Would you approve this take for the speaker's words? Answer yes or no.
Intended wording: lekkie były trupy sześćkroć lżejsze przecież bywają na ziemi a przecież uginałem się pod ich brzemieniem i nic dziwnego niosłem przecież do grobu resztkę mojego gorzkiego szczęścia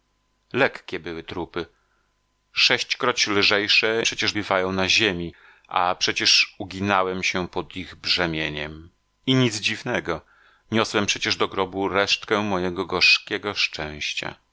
yes